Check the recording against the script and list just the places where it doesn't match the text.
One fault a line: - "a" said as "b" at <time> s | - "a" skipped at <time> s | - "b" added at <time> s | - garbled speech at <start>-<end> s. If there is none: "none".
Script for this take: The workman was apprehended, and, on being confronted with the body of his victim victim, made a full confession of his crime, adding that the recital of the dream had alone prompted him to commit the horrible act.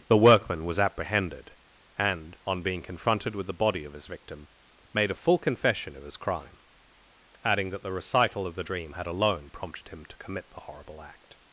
- "victim" skipped at 4.5 s